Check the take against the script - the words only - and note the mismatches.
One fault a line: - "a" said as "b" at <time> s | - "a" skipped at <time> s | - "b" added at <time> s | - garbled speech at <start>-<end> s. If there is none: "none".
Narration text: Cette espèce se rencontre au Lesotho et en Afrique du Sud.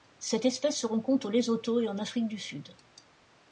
none